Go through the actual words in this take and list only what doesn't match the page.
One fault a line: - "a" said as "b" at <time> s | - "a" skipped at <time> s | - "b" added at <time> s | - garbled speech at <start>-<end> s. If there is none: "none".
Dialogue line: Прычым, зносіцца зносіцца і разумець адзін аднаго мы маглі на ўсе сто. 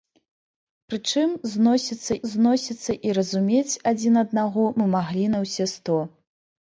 none